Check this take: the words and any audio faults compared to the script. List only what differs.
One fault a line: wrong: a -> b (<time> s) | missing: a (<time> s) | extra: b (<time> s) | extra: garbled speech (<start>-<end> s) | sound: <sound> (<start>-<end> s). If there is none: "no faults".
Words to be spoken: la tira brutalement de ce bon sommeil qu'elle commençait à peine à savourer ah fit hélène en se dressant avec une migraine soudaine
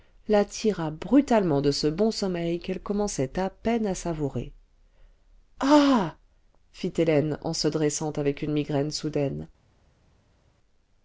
no faults